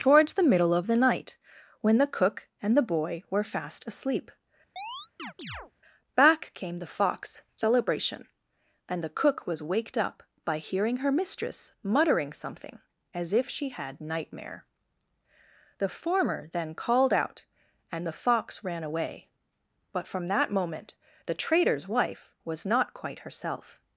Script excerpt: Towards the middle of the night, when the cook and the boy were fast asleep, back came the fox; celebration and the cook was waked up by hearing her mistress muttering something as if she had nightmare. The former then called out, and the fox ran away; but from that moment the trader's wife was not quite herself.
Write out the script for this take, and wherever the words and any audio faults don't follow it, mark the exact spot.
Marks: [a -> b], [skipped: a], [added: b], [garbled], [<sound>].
Towards the middle of the night, when the cook and the boy were fast asleep, [chirp] back came the fox; celebration and the cook was waked up by hearing her mistress muttering something as if she had nightmare. The former then called out, and the fox ran away; but from that moment the trader's wife was not quite herself.